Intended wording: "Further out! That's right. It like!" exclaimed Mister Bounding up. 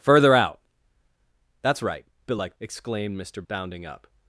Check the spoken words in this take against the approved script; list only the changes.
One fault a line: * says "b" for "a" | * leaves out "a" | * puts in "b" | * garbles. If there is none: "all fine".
all fine